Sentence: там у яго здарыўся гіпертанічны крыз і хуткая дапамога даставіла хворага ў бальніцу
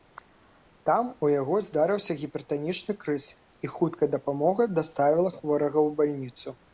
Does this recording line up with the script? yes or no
yes